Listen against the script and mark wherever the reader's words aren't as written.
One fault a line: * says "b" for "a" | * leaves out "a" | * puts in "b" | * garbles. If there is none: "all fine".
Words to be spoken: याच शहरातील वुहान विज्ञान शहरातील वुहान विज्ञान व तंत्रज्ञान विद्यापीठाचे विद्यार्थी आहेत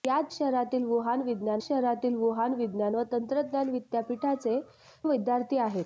all fine